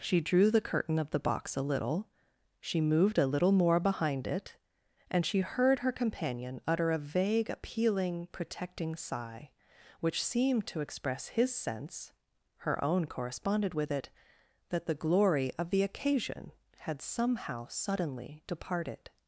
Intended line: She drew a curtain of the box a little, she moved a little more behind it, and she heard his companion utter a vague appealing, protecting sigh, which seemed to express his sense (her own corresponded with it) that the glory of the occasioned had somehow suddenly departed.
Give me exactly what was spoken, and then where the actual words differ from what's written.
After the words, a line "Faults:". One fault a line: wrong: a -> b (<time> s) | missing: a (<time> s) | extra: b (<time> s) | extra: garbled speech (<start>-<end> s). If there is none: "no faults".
She drew the curtain of the box a little, she moved a little more behind it, and she heard her companion utter a vague appealing, protecting sigh, which seemed to express his sense (her own corresponded with it) that the glory of the occasion had somehow suddenly departed.
Faults:
wrong: a -> the (0.5 s)
wrong: his -> her (5.8 s)
wrong: occasioned -> occasion (15.8 s)